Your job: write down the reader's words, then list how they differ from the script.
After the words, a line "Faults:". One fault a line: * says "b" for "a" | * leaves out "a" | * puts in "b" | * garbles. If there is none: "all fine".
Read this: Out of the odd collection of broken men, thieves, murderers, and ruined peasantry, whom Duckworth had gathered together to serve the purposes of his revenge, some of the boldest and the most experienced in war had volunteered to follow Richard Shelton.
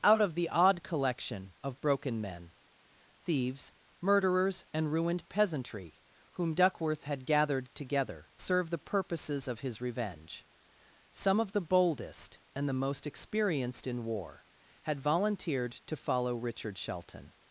Out of the odd collection of broken men, thieves, murderers, and ruined peasantry, whom Duckworth had gathered together serve the purposes of his revenge, some of the boldest and the most experienced in war had volunteered to follow Richard Shelton.
Faults:
* leaves out "to"